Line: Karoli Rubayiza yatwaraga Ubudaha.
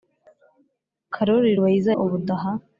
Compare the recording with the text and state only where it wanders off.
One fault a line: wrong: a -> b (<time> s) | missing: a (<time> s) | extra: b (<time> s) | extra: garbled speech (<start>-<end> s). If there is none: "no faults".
missing: yatwaraga (1.9 s)